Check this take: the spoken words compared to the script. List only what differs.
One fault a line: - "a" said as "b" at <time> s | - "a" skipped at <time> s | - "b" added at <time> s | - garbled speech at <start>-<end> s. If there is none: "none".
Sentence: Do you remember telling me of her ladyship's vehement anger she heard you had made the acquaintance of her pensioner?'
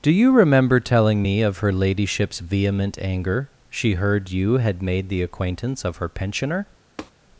none